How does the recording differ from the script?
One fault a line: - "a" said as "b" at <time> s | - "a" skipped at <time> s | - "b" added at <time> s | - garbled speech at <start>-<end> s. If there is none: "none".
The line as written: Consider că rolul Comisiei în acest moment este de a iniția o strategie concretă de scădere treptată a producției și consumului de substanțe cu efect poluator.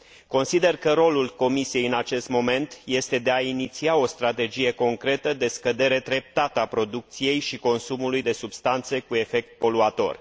none